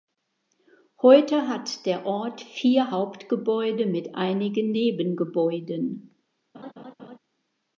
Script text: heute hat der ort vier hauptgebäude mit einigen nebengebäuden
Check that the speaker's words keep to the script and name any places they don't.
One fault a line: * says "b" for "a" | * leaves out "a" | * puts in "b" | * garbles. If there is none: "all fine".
all fine